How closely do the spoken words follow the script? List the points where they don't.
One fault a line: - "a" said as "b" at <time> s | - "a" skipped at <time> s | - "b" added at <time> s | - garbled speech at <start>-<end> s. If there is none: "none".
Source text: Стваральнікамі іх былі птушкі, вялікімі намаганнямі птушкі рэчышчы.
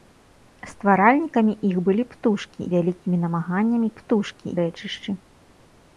none